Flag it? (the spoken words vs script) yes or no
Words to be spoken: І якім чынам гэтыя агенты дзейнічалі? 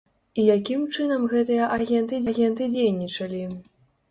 yes